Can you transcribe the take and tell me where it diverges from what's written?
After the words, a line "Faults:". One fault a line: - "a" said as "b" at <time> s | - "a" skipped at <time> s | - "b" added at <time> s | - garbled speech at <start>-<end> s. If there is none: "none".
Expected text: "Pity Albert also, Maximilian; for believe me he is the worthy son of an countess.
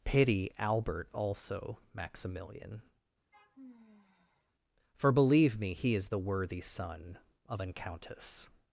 "Pity Albert also, Maximilian; for believe me he is the worthy son of an countess.
Faults:
none